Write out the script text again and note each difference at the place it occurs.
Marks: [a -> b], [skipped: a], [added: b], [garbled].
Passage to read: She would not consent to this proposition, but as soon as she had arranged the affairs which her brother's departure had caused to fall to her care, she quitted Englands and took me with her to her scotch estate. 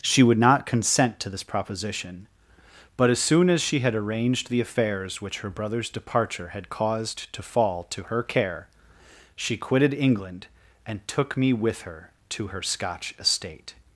She would not consent to this proposition, but as soon as she had arranged the affairs which her brother's departure had caused to fall to her care, she quitted [Englands -> England] and took me with her to her scotch estate.